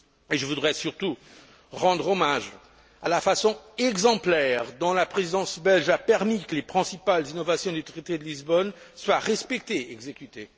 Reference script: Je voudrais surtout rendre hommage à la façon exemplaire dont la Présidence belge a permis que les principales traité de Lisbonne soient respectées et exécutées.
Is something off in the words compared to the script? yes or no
yes